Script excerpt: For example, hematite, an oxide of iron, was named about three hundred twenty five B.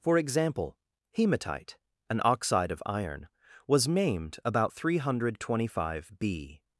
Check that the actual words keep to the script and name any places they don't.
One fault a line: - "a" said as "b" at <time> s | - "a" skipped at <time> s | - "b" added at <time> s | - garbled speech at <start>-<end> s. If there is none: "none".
none